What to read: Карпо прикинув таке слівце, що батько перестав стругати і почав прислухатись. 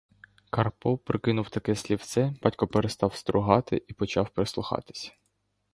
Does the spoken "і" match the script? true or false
true